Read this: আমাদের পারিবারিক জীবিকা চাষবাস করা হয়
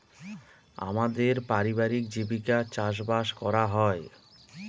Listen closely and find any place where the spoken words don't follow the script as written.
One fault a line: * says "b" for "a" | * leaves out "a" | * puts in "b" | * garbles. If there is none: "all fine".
all fine